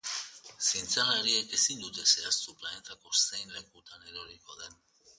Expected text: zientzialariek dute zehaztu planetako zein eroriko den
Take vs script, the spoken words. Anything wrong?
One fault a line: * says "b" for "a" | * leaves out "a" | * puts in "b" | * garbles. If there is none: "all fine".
* puts in "ezin"
* puts in "lekutan"